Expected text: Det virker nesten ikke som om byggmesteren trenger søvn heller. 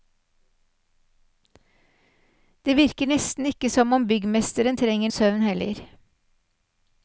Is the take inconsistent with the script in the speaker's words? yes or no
no